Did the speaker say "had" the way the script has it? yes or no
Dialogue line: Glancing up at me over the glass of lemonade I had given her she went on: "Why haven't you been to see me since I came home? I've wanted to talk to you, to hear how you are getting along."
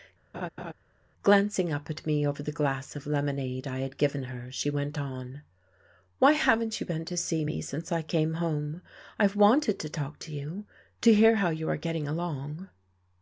yes